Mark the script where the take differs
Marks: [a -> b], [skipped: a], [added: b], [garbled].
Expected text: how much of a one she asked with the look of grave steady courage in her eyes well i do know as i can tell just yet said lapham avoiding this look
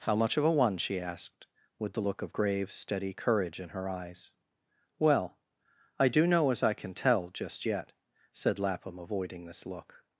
how much of a one she asked with the look of grave steady courage in her eyes well i do know as i can tell just yet said lapham avoiding this look